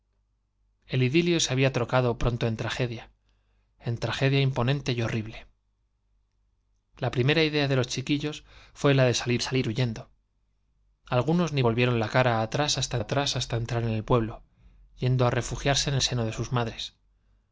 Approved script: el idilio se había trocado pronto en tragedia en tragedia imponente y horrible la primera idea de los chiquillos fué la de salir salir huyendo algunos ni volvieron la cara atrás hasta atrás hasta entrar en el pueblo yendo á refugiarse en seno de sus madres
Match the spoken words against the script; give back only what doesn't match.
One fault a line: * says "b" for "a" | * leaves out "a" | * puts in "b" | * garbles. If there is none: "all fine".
all fine